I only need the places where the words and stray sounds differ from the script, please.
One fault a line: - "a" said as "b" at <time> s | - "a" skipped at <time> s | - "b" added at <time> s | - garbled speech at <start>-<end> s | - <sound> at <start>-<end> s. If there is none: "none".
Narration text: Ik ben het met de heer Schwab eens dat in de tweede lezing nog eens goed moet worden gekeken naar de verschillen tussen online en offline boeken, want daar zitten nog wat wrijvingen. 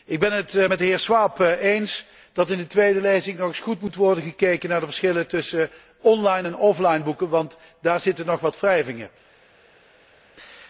none